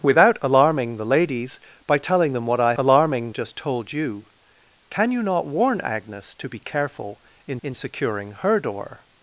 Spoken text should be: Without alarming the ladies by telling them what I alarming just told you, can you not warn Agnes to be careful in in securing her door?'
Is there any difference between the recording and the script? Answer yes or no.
no